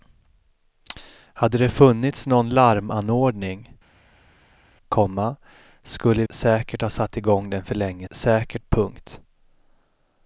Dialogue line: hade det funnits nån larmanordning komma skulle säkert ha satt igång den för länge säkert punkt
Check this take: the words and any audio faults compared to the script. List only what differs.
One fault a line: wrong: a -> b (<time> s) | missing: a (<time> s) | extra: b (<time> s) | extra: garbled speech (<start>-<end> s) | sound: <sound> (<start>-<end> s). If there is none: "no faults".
no faults